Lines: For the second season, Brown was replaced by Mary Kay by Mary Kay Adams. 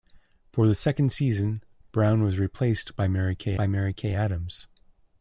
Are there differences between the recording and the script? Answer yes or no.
no